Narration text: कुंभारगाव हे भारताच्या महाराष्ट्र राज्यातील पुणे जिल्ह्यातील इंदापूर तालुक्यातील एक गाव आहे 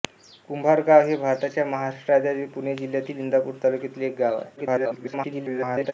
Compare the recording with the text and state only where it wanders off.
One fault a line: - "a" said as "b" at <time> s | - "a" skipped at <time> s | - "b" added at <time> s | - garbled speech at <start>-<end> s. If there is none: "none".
- garbled speech at 4.6-5.9 s